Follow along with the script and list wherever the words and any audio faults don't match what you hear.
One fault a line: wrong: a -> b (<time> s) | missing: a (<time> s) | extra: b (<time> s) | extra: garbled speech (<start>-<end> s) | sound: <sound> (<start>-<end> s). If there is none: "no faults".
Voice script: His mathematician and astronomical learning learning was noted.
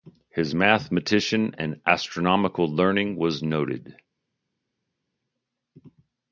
missing: learning (3.2 s)